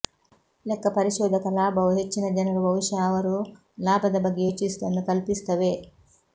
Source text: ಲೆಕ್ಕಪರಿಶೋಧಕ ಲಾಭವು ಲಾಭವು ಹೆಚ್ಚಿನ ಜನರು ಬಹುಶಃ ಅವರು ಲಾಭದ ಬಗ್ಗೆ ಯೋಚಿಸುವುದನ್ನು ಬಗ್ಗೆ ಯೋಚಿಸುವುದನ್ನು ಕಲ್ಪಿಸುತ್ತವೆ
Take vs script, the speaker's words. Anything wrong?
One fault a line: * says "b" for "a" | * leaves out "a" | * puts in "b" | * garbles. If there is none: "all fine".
* leaves out "ಲಾಭವು"
* leaves out "ಬಗ್ಗೆ ಯೋಚಿಸುವುದನ್ನು"